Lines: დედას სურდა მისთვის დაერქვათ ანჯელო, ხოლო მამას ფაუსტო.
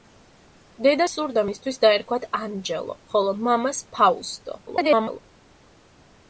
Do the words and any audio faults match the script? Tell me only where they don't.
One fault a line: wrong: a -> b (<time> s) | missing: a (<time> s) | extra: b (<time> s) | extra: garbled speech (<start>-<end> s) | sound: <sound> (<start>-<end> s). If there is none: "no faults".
extra: garbled speech (4.7-5.2 s)